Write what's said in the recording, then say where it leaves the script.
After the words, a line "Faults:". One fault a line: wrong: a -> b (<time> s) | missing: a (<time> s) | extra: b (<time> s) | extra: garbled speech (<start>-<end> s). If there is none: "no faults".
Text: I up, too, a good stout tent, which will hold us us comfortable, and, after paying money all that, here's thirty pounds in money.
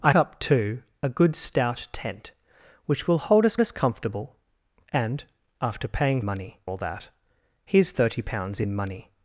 I up, too, a good stout tent, which will hold us us comfortable, and, after paying money all that, here's thirty pounds in money.
Faults:
no faults